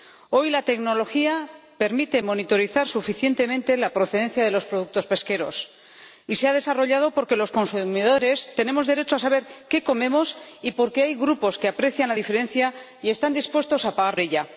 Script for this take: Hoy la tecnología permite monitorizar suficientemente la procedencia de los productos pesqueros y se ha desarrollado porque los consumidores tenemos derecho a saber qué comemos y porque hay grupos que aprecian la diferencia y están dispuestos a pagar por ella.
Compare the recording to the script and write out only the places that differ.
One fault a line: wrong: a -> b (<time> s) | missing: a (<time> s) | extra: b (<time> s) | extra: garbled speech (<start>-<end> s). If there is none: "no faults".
missing: por (14.2 s)